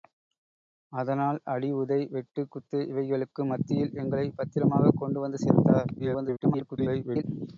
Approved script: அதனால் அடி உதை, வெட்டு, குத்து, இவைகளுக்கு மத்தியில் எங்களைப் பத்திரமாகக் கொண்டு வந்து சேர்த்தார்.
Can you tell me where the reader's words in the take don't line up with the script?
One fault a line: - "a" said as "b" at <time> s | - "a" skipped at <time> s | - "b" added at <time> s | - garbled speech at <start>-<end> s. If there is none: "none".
- garbled speech at 6.0-7.2 s